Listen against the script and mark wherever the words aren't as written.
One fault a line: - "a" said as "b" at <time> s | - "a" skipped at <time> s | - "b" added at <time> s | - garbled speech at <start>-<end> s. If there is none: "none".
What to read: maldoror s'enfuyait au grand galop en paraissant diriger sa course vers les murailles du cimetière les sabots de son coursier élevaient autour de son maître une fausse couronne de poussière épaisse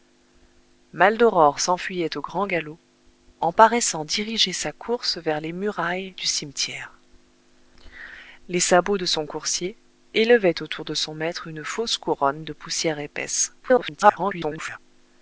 - garbled speech at 13.6-14.8 s